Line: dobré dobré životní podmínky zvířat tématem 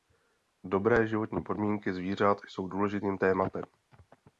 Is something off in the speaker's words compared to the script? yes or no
yes